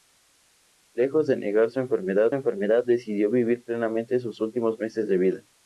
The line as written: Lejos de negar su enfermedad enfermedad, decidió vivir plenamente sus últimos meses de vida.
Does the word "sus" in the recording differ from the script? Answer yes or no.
no